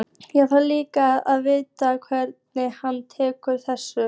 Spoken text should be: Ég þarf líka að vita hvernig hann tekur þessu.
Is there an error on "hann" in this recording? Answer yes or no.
no